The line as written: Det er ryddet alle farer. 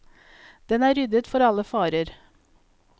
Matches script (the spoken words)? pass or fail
fail